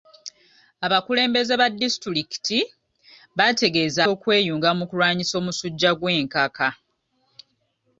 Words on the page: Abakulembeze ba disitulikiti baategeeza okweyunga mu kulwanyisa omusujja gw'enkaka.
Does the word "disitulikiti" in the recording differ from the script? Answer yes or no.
no